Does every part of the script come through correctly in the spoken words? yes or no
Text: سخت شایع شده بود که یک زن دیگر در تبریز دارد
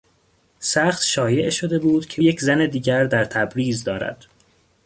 yes